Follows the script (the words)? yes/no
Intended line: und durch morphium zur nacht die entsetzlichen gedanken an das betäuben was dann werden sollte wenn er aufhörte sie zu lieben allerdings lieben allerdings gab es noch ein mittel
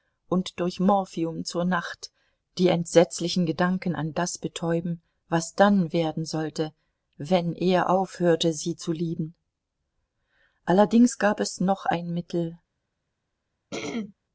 no